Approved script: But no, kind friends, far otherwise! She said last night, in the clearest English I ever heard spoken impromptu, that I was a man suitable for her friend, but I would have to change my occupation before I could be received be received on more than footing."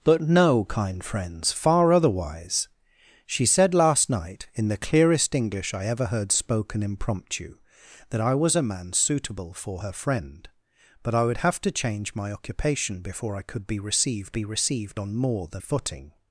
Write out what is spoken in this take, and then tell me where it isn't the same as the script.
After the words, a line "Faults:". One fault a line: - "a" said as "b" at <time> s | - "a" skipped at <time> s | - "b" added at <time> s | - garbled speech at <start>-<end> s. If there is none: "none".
But no, kind friends, far otherwise! She said last night, in the clearest English I ever heard spoken impromptu, that I was a man suitable for her friend, but I would have to change my occupation before I could be received be received on more than footing."
Faults:
none